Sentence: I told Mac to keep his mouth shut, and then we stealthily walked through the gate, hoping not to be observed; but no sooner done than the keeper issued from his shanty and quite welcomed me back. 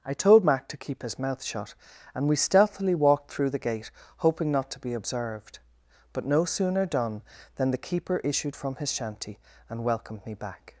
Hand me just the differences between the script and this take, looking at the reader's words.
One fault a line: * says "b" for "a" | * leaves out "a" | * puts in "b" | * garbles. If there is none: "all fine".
* leaves out "then"
* leaves out "quite"